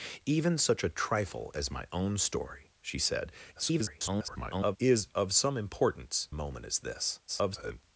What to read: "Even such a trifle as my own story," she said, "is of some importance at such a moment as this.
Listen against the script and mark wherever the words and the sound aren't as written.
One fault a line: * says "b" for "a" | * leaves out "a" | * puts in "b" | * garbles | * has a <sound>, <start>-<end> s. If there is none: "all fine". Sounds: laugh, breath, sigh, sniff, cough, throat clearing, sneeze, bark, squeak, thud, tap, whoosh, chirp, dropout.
* garbles
* leaves out "at such a"
* garbles